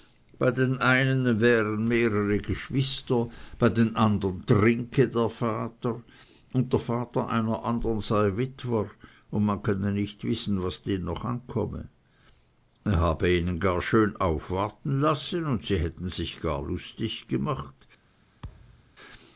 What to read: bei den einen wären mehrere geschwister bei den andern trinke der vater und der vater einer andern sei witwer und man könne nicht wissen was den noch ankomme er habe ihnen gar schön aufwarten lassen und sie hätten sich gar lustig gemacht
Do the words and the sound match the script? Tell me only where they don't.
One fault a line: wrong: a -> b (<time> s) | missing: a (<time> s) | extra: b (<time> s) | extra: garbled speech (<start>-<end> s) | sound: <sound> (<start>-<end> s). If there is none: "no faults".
sound: thud (18.4-18.9 s)